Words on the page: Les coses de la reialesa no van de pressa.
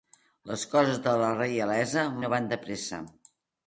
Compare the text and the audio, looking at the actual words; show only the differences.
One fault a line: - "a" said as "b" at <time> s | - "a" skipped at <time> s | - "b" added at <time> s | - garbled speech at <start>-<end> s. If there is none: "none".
none